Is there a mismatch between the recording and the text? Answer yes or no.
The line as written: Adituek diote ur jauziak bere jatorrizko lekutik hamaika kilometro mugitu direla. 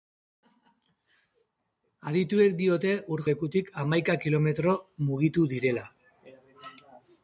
yes